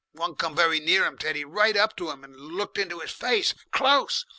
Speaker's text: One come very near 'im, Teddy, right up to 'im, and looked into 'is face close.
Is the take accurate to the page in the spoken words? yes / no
yes